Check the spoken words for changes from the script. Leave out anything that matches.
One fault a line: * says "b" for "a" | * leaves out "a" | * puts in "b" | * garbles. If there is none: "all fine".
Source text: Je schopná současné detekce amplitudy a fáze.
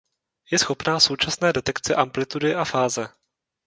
all fine